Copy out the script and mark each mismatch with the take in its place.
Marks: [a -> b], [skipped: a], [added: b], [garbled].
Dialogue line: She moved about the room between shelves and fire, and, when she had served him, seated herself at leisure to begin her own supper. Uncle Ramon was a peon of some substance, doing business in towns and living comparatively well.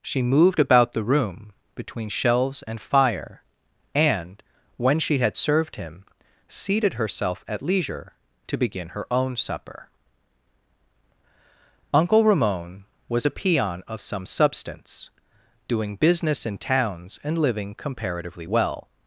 She moved about the room between shelves and fire, and, when she had served him, seated herself at leisure to begin her own supper. Uncle Ramon was a peon of some substance, doing business in towns and living comparatively well.